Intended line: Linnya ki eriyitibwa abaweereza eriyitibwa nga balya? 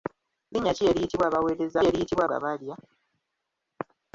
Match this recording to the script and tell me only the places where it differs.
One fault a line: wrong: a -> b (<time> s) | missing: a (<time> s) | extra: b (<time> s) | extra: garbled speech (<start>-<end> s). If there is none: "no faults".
no faults